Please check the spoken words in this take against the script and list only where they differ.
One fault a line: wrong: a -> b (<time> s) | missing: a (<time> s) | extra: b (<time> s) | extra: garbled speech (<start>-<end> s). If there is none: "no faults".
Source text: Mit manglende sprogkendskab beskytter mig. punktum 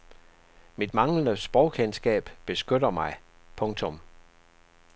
no faults